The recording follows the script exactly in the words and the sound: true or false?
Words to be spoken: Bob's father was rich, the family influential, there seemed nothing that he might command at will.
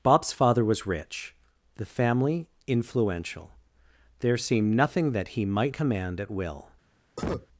false